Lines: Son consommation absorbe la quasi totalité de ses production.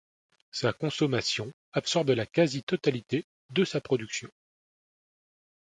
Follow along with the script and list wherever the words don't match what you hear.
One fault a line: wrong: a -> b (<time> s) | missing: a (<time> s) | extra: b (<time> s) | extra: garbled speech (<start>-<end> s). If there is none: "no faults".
wrong: Son -> Sa (0.5 s)
wrong: ses -> sa (3.6 s)